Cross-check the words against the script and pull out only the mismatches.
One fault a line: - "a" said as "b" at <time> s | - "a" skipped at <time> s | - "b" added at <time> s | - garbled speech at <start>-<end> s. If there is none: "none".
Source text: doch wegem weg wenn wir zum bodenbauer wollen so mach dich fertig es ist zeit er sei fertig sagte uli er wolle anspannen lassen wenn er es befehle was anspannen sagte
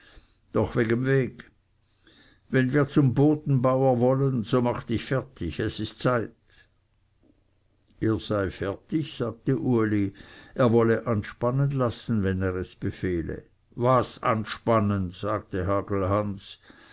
none